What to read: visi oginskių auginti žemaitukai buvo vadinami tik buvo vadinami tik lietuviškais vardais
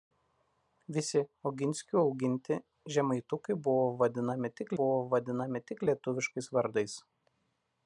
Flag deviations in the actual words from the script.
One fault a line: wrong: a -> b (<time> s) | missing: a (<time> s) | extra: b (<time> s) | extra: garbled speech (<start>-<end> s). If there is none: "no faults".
no faults